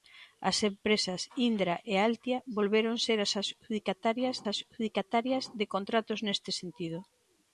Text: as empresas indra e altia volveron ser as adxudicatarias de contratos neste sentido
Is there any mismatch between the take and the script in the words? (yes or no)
yes